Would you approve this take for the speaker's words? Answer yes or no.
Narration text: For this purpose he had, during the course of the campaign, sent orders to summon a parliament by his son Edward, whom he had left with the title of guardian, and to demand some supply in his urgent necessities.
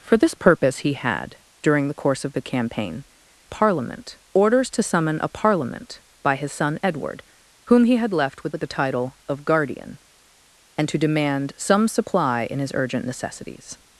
no